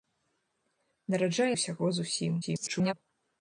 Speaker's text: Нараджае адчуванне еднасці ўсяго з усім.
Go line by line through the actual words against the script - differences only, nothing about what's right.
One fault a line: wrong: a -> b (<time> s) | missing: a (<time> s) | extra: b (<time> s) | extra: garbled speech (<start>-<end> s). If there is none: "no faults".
missing: адчуванне еднасці (1.5 s)
extra: garbled speech (2.4-2.9 s)